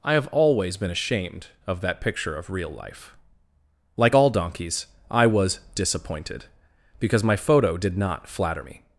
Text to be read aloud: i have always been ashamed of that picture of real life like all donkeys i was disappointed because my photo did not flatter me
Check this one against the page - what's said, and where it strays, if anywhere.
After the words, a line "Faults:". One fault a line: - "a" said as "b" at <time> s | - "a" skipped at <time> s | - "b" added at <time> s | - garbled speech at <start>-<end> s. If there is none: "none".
i have always been ashamed of that picture of real life like all donkeys i was disappointed because my photo did not flatter me
Faults:
none